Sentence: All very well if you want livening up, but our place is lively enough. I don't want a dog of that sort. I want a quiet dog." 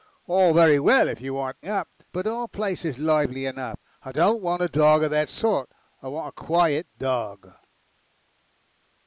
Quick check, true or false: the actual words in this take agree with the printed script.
false